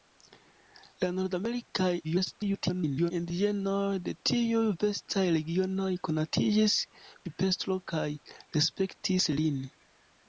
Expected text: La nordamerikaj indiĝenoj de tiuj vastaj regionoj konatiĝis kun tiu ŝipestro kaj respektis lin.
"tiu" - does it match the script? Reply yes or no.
no